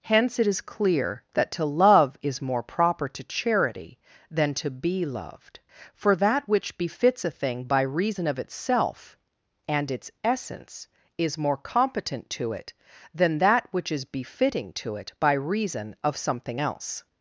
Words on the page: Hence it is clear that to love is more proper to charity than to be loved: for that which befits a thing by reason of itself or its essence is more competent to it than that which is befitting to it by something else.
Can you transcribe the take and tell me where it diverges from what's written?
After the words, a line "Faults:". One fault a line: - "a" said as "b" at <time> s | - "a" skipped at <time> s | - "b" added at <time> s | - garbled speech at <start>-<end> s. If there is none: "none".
Hence it is clear that to love is more proper to charity than to be loved: for that which befits a thing by reason of itself and its essence is more competent to it than that which is befitting to it by reason of something else.
Faults:
- "or" said as "and" at 9.7 s
- "reason of" added at 15.3 s